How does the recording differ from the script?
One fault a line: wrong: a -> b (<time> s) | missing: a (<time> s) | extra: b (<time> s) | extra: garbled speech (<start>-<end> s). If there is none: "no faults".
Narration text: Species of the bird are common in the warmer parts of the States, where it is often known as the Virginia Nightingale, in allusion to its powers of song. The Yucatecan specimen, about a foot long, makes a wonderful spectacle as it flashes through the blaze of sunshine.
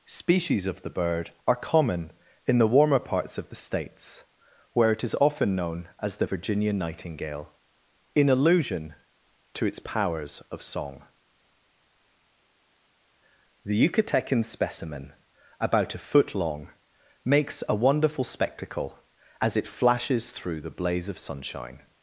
no faults